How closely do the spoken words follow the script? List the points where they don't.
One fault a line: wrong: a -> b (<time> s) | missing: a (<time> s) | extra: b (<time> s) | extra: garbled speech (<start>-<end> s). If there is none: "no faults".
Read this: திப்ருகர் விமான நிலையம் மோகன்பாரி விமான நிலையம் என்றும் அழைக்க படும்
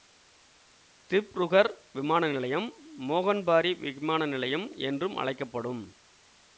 no faults